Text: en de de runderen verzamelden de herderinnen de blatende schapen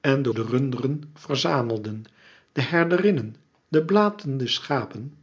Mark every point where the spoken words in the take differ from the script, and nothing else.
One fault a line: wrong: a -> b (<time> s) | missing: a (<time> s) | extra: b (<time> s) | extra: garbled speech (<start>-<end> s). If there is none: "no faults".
no faults